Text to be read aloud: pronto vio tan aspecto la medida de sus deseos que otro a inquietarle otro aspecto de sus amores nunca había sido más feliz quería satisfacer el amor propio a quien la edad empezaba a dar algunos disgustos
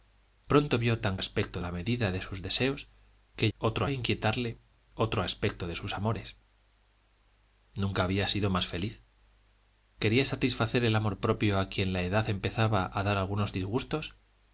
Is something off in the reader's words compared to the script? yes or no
no